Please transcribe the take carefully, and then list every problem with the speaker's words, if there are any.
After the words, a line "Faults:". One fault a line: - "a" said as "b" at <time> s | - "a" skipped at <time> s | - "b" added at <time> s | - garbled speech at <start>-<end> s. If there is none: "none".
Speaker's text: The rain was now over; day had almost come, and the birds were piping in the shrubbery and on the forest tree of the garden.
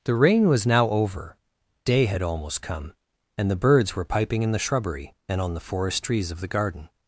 The rain was now over; day had almost come, and the birds were piping in the shrubbery and on the forest trees of the garden.
Faults:
- "tree" said as "trees" at 6.0 s